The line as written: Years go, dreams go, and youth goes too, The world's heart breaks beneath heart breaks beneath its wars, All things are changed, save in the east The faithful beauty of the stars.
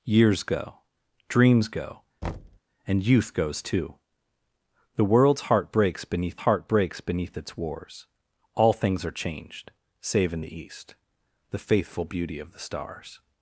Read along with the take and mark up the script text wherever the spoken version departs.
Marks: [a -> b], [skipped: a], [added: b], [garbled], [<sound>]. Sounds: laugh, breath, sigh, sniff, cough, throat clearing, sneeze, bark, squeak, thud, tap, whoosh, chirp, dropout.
Years go, dreams go, [thud] and youth goes too, The world's heart breaks beneath heart breaks beneath its wars, All things are changed, save in the east The faithful beauty of the stars.